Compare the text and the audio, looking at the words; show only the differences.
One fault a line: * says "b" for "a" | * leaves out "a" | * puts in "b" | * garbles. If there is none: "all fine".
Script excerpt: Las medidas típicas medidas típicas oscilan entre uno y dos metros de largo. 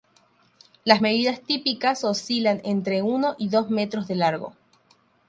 * leaves out "medidas típicas"